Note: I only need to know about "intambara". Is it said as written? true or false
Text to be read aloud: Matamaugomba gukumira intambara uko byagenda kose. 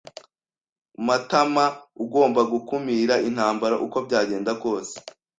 true